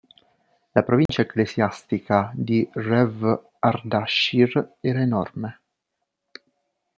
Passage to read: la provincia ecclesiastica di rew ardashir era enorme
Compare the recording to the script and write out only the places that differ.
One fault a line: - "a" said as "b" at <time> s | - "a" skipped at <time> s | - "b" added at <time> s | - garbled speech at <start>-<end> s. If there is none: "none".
none